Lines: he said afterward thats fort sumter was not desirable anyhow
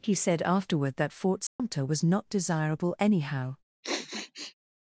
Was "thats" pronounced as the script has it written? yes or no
no